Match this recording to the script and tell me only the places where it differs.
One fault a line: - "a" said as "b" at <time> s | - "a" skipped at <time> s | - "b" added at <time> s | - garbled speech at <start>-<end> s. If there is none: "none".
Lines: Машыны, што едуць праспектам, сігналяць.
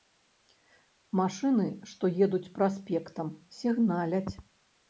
none